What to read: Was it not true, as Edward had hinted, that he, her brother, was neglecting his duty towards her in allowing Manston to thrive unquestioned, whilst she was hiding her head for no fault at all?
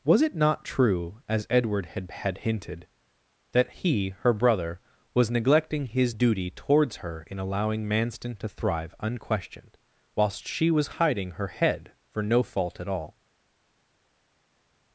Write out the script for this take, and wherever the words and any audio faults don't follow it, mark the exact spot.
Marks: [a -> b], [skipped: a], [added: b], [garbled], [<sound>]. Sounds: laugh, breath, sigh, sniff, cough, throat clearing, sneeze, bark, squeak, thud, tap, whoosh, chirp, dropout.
Was it not true, as Edward had [added: had] hinted, that he, her brother, was neglecting his duty towards her in allowing Manston to thrive unquestioned, whilst she was hiding her head for no fault at all?